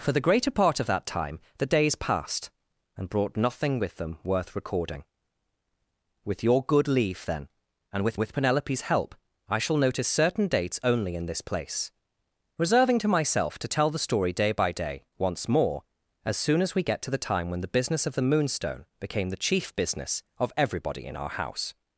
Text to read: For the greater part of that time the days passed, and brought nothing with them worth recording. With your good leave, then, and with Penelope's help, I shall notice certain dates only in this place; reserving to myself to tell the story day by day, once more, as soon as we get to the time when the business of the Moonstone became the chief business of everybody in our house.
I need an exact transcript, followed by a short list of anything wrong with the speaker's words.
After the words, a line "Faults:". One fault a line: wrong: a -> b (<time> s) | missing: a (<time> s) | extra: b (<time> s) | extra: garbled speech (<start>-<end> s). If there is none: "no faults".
For the greater part of that time the days passed, and brought nothing with them worth recording. With your good leave, then, and with with Penelope's help, I shall notice certain dates only in this place; reserving to myself to tell the story day by day, once more, as soon as we get to the time when the business of the Moonstone became the chief business of everybody in our house.
Faults:
extra: with (8.2 s)